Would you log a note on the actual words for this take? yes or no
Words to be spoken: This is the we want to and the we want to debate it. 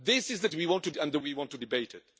no